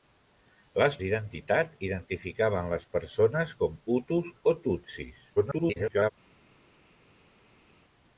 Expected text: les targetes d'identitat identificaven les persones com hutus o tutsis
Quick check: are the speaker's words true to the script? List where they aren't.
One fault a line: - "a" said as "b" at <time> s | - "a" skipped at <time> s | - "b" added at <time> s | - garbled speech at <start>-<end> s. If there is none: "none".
- "targetes" skipped at 0.9 s
- garbled speech at 5.4-6.1 s